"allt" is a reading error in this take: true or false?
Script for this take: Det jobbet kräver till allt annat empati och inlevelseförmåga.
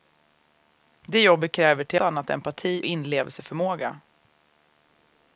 true